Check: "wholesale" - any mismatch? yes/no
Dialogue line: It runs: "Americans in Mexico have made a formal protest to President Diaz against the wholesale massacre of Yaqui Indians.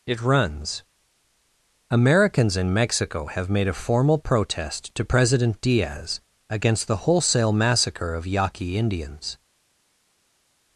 no